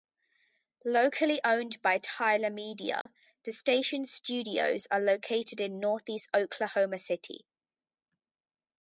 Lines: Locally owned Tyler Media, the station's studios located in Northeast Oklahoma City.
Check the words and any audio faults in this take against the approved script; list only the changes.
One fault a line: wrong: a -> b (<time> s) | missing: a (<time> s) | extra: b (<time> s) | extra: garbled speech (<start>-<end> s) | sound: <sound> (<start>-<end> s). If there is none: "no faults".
extra: by (1.8 s)
sound: dropout (3.0-3.1 s)
extra: are (4.9 s)